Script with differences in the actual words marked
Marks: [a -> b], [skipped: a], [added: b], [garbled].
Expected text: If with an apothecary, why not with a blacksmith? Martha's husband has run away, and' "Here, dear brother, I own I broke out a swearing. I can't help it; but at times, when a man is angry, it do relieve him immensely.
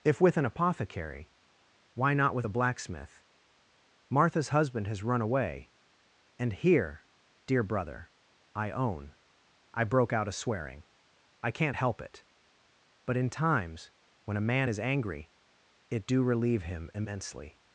If with an apothecary, why not with a blacksmith? Martha's husband has run away, and' "Here, dear brother, I own I broke out a swearing. I can't help it; but [at -> in] times, when a man is angry, it do relieve him immensely.